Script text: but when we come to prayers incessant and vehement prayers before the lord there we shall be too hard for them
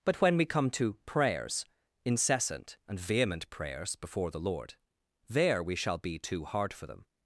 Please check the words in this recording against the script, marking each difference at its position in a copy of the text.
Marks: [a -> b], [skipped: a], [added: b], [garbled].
but when we come to prayers incessant and vehement prayers before the lord there we shall be too hard for them